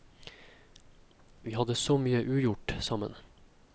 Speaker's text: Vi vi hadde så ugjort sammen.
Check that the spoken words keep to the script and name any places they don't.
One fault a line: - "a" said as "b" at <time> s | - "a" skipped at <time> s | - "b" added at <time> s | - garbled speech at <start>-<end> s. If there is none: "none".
- "vi" skipped at 1.5 s
- "mye" added at 2.0 s